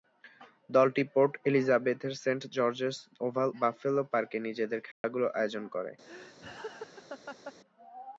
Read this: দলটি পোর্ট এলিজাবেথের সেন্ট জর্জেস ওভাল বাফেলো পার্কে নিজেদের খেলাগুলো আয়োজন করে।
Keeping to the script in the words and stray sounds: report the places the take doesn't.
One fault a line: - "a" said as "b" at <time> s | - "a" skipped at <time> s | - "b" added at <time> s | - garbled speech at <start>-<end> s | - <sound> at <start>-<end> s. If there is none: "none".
- dropout at 4.9-5.0 s
- laugh at 6.0-7.5 s